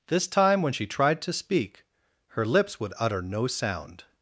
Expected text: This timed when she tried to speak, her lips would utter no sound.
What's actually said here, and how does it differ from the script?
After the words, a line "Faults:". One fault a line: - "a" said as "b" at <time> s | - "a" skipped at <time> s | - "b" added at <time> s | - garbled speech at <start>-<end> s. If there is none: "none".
This time when she tried to speak, her lips would utter no sound.
Faults:
- "timed" said as "time" at 0.3 s